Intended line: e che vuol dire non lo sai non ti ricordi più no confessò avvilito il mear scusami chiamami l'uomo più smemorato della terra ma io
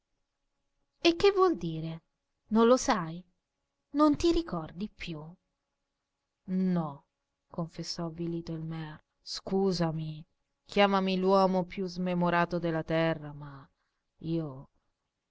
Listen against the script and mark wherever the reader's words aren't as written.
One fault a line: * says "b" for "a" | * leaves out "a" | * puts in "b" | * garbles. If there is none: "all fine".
all fine